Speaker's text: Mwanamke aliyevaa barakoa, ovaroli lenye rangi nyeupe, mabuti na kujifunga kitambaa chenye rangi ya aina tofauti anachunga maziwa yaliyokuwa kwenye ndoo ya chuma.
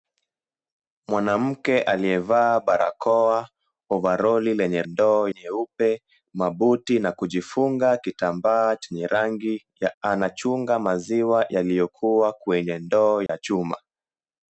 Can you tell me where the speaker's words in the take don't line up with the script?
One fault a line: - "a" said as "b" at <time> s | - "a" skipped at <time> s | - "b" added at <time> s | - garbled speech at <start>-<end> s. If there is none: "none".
- "rangi" said as "ndoo" at 4.8 s
- "aina tofauti" skipped at 10.0 s